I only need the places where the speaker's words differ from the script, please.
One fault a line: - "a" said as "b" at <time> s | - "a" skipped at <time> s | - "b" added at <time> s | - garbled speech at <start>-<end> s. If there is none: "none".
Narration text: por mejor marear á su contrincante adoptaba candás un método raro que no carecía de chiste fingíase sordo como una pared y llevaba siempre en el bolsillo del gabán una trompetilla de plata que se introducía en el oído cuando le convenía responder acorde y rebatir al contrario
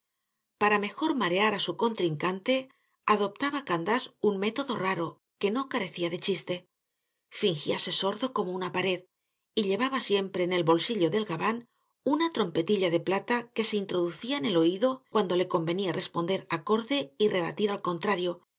- "por" said as "para" at 0.6 s